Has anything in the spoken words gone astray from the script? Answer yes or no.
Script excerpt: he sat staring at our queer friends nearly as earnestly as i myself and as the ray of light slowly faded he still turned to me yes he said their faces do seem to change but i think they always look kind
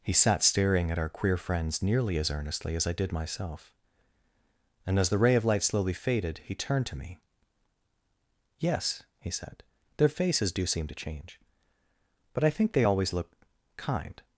yes